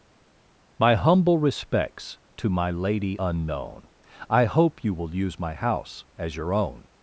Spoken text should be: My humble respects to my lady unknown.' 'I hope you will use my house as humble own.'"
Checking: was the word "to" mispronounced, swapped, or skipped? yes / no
no